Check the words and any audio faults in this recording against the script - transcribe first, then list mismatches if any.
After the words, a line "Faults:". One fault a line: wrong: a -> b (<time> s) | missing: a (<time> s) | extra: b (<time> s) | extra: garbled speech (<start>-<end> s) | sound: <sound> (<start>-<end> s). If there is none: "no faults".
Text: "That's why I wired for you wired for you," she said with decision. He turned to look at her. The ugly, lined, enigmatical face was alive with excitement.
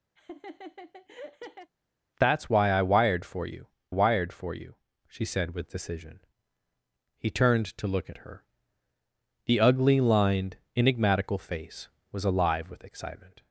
"That's why I wired for you wired for you," she said with decision. He turned to look at her. The ugly, lined, enigmatical face was alive with excitement.
Faults:
sound: laugh (0.2-1.7 s)